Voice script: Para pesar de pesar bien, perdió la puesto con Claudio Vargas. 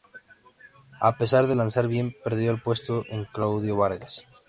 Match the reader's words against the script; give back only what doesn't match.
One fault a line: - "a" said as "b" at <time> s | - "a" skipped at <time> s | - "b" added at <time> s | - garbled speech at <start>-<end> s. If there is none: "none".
- "Para" said as "A" at 1.0 s
- "pesar" said as "lanzar" at 1.5 s
- "la" said as "el" at 2.5 s